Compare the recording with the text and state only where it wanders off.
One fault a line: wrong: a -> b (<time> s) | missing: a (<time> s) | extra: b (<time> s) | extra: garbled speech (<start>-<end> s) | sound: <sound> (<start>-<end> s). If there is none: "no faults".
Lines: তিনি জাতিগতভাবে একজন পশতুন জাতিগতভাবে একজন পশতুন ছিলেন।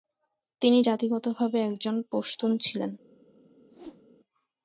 missing: জাতিগতভাবে একজন পশতুন (2.5 s)
sound: whoosh (3.7-4.1 s)